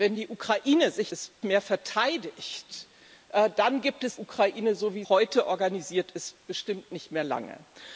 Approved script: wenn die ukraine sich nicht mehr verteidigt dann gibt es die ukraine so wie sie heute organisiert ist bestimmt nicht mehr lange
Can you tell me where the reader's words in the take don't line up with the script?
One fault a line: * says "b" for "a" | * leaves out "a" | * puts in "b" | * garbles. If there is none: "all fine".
* says "ist" for "nicht"
* leaves out "die"
* leaves out "sie"